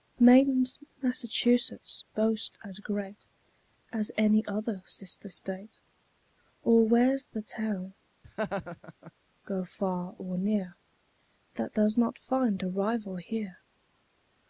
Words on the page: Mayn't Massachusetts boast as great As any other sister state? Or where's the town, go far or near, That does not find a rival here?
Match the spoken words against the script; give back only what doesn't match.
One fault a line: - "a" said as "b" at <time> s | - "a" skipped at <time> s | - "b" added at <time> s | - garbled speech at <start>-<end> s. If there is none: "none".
none